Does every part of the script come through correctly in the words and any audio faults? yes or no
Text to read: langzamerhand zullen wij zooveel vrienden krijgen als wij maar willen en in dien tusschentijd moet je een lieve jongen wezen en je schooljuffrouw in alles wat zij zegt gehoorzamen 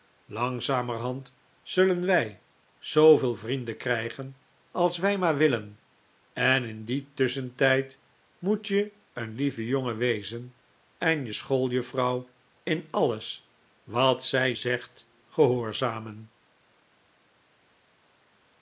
yes